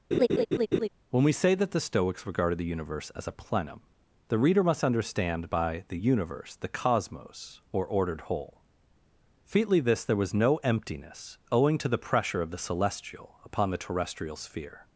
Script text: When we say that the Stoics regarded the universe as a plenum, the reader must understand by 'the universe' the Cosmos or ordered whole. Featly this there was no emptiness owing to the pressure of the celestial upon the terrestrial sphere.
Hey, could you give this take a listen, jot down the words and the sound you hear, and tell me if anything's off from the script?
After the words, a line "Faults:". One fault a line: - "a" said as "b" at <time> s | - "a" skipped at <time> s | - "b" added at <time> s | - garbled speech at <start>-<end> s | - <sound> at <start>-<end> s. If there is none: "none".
When we say that the Stoics regarded the universe as a plenum, the reader must understand by 'the universe' the Cosmos or ordered whole. Featly this there was no emptiness owing to the pressure of the celestial upon the terrestrial sphere.
Faults:
- laugh at 0.1-0.9 s